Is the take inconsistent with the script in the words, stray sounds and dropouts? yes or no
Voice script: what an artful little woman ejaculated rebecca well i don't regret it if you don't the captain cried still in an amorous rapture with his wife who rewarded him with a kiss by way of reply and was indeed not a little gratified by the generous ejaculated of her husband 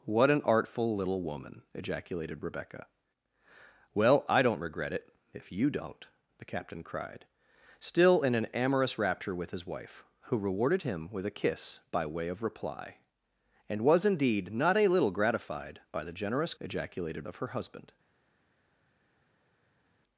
no